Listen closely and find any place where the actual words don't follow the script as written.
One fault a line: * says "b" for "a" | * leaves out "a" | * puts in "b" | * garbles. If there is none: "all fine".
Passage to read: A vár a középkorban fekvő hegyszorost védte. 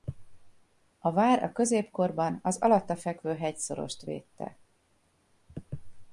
* puts in "az alatta"